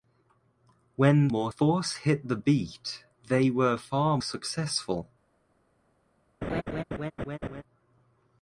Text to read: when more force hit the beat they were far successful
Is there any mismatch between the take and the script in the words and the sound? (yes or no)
yes